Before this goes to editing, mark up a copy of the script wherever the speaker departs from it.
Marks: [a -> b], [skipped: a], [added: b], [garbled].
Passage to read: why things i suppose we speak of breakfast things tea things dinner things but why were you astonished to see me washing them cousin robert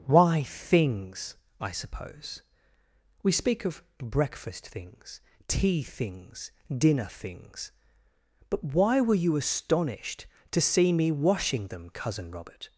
why things i suppose we speak of breakfast things tea things dinner things but why were you astonished to see me washing them cousin robert